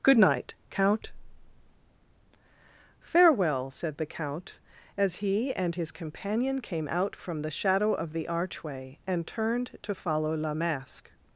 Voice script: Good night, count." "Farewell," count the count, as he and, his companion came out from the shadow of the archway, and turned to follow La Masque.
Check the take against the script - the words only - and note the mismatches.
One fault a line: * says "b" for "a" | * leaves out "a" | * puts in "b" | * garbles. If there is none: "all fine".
* says "said" for "count"